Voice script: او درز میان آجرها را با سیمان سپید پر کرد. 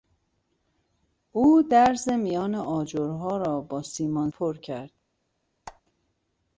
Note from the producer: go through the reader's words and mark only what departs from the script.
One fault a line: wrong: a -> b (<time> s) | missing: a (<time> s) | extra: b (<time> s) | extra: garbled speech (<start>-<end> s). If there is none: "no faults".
missing: سپید (4.3 s)